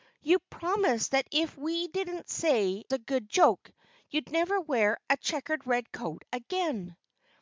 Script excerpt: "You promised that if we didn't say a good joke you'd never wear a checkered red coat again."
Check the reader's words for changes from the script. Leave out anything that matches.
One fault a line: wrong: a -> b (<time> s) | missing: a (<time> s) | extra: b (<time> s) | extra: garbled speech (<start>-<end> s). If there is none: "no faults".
no faults